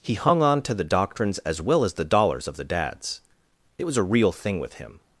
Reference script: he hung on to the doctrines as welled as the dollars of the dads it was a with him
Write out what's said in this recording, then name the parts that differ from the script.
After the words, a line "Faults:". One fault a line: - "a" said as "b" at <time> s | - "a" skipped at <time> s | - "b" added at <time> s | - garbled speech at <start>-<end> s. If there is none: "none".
he hung on to the doctrines as well as the dollars of the dads it was a real thing with him
Faults:
- "welled" said as "well" at 1.6 s
- "real thing" added at 4.0 s